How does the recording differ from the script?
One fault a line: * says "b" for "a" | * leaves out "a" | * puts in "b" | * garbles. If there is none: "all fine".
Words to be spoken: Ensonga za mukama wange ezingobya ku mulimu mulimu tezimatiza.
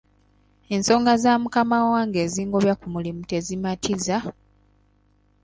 * leaves out "mulimu"